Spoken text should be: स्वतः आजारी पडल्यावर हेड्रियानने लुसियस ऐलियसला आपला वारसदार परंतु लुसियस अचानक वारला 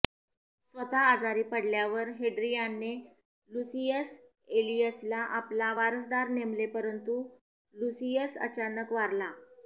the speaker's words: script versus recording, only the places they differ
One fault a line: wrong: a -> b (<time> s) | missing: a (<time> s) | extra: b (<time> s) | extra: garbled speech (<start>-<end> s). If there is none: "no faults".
extra: नेमले (6.4 s)